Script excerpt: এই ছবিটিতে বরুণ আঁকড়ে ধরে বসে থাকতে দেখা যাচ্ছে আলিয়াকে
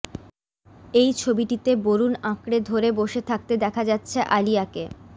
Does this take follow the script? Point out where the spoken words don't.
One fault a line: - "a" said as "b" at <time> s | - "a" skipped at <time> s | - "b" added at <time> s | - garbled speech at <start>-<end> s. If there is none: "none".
none